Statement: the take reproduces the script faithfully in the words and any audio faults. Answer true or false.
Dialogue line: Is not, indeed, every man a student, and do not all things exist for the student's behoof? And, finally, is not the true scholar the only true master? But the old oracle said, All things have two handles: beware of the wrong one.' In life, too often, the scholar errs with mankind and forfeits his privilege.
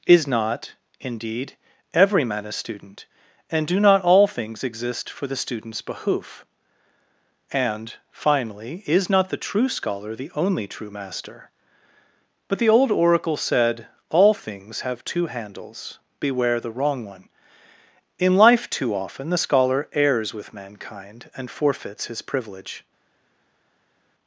false